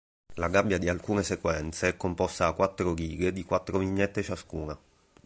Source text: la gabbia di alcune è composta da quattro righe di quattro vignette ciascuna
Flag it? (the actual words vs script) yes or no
yes